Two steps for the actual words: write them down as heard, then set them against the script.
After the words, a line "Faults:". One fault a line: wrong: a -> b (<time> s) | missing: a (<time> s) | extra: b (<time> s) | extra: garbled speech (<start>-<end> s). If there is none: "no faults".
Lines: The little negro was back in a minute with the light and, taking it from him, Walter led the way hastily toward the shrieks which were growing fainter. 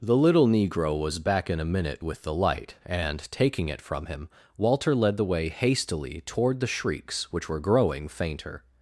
The little negro was back in a minute with the light and, taking it from him, Walter led the way hastily toward the shrieks which were growing fainter.
Faults:
no faults